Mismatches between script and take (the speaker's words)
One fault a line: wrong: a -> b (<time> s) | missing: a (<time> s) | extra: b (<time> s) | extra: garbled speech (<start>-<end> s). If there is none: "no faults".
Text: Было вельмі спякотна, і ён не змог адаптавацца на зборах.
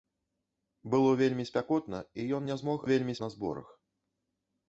wrong: адаптавацца -> вельмі (2.9 s)